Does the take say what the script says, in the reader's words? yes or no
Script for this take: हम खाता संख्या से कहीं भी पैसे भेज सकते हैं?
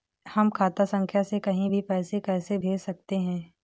no